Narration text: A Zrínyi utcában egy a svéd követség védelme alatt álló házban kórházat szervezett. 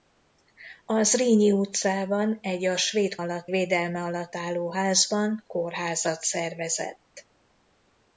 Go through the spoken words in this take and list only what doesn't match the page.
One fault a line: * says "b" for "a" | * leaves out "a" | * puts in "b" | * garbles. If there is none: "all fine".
* says "alatt" for "követség"